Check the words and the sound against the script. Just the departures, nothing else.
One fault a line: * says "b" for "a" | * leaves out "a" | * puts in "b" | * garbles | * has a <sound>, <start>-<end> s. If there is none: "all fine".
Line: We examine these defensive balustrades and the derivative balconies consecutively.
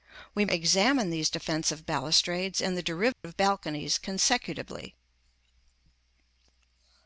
* has a dropout, 3.1-3.2 s